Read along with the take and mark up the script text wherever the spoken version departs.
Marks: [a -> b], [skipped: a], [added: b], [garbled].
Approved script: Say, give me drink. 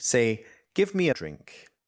Say, give me drink.